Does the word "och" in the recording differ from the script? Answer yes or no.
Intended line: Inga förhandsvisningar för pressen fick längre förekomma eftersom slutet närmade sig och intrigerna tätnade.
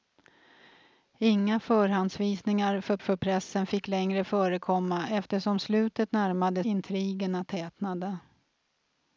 yes